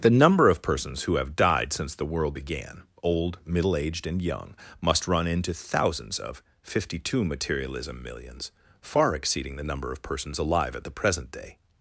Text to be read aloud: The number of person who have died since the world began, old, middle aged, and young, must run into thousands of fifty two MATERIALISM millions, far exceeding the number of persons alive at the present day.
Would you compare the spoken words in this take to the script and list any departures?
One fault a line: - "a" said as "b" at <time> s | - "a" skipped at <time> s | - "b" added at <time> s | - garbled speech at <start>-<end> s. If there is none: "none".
- "person" said as "persons" at 0.6 s